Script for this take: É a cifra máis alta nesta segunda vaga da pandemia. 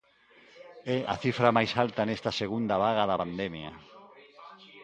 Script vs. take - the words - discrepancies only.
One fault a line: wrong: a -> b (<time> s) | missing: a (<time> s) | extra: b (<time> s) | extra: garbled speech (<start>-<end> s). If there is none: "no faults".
no faults